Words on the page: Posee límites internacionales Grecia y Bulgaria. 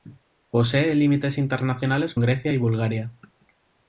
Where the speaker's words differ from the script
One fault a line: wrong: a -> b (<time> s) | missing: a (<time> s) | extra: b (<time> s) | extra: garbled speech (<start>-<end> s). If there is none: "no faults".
no faults